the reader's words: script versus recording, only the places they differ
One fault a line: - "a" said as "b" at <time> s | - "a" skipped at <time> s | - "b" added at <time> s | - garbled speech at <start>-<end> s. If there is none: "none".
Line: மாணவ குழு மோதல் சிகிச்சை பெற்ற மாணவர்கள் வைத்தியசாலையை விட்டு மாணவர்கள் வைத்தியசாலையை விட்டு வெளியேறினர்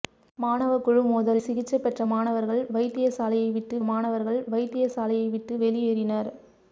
none